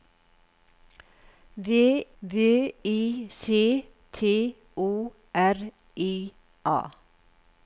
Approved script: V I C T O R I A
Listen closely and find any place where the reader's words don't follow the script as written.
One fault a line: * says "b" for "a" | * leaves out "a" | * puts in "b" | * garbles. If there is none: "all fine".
* puts in "v"